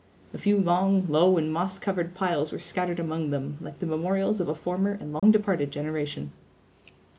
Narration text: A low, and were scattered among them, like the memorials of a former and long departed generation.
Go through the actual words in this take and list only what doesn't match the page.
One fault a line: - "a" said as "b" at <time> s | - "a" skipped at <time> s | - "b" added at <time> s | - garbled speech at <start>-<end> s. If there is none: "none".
- "few long" added at 0.4 s
- "moss covered piles" added at 1.5 s